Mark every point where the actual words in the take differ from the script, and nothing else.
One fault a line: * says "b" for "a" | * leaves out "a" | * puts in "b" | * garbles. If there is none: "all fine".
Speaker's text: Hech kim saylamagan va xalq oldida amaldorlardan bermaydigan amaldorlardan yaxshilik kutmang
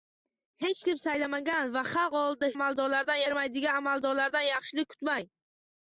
all fine